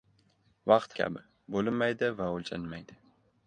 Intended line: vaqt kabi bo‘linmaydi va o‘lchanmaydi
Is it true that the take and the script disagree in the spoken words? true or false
false